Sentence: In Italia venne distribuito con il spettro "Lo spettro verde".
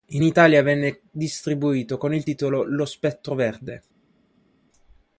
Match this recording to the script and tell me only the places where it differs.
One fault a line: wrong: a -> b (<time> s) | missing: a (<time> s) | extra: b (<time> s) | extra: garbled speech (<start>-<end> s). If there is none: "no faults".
wrong: spettro -> titolo (2.2 s)